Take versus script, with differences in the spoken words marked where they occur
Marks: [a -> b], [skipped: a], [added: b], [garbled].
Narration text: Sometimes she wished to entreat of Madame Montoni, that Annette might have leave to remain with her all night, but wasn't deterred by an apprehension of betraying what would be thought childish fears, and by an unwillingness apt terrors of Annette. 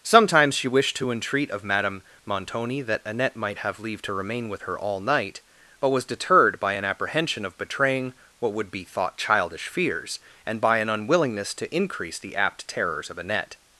Sometimes she wished to entreat of Madame Montoni, that Annette might have leave to remain with her all night, but [wasn't -> was] deterred by an apprehension of betraying what would be thought childish fears, and by an unwillingness [added: to increase the] apt terrors of Annette.